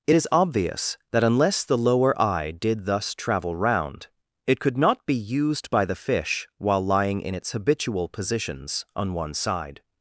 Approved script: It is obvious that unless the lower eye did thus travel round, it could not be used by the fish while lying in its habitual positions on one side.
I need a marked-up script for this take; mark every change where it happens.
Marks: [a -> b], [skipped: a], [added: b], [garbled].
It is obvious that unless the lower eye did thus travel round, it could not be used by the fish while lying in its habitual positions on one side.